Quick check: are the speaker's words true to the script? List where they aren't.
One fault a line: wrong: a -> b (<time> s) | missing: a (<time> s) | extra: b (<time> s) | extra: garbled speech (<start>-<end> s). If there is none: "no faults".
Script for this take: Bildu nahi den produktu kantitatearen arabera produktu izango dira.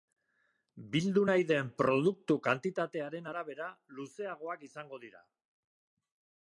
wrong: produktu -> luzeagoak (4.0 s)